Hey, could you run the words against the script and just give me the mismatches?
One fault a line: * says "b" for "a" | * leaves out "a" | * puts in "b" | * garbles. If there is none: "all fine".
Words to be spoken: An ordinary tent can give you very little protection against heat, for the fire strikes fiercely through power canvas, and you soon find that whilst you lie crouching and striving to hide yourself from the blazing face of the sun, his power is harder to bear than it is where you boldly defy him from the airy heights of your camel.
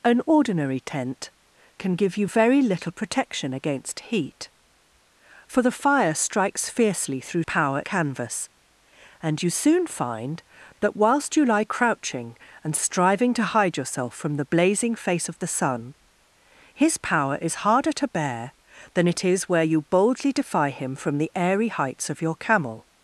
all fine